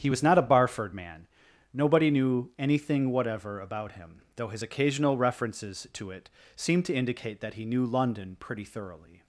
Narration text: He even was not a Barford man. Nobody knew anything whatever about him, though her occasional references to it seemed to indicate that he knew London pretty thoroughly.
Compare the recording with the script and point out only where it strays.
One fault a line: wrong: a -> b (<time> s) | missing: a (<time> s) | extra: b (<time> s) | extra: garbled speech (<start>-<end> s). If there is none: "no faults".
missing: even (0.1 s)
wrong: her -> his (4.5 s)